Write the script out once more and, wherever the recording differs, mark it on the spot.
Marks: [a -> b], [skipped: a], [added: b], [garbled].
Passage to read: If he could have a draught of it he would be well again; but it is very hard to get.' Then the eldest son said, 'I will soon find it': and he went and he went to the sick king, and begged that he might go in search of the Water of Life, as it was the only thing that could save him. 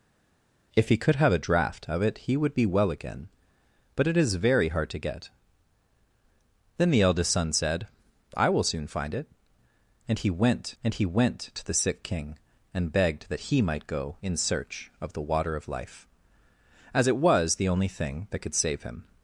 If he could have a draught of it he would be well again; but it is very hard to get.' Then the eldest son said, 'I will soon find it': and he went and he went to the sick king, and begged that he might go in search of the Water of Life, as it was the only thing that could save him.